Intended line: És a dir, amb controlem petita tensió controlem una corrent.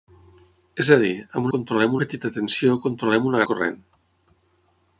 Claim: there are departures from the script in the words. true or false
false